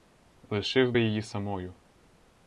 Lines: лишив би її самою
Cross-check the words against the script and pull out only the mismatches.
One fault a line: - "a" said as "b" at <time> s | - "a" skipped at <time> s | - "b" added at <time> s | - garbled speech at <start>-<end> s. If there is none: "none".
none